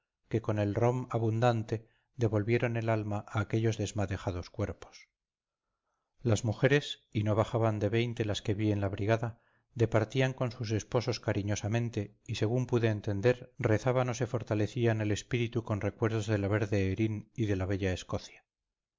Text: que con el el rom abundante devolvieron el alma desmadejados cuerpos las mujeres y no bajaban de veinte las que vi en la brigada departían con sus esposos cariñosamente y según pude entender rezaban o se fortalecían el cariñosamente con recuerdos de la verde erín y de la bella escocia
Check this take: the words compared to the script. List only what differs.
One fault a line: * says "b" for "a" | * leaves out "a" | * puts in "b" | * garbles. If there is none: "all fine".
* leaves out "el"
* puts in "a aquellos"
* says "espíritu" for "cariñosamente"